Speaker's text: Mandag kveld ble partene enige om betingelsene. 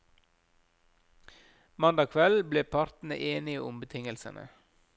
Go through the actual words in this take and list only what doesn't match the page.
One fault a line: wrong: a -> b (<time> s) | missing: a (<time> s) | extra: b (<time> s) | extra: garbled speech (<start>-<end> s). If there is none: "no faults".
no faults